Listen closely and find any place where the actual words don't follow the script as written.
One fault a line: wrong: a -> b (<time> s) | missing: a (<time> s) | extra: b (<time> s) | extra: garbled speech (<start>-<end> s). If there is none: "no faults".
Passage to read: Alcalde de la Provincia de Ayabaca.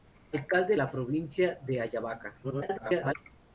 missing: de (0.8 s)
extra: garbled speech (2.4-3.1 s)